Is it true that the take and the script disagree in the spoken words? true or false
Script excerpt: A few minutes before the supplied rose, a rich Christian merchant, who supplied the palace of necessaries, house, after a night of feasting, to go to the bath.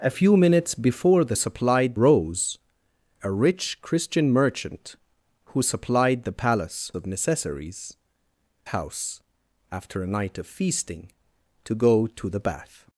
false